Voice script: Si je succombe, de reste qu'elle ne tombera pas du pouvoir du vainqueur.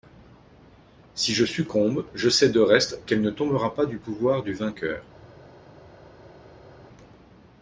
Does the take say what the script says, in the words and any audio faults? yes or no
no